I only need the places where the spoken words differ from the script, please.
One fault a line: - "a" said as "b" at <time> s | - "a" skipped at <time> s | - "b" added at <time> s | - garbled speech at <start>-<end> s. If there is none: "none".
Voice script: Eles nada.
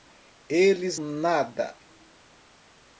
none